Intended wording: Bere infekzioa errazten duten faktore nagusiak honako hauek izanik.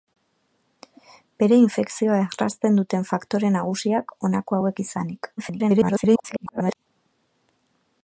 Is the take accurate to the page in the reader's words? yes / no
no